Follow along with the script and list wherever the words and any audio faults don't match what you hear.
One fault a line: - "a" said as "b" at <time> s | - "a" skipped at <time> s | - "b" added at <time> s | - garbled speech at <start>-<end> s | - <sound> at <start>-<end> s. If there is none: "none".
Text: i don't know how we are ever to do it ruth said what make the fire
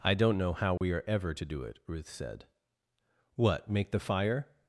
- dropout at 0.8-0.8 s